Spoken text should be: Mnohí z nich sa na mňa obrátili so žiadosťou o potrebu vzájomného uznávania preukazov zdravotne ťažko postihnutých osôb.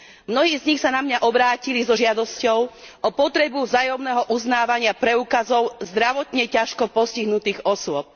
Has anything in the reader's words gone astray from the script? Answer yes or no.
no